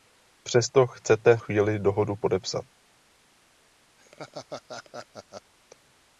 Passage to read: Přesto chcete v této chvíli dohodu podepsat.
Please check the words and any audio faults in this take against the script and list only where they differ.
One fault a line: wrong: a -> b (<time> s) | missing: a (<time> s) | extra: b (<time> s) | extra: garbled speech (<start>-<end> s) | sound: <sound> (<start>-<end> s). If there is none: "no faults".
missing: v této (1.4 s)
sound: laugh (4.0-5.5 s)